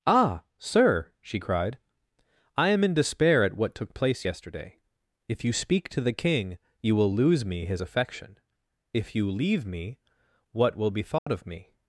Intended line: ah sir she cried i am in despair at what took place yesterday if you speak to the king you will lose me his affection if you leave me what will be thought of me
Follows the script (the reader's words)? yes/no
yes